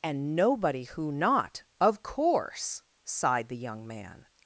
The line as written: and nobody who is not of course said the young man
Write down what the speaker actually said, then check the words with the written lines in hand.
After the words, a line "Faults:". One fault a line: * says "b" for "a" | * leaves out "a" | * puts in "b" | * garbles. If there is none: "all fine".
and nobody who not of course sighed the young man
Faults:
* leaves out "is"
* says "sighed" for "said"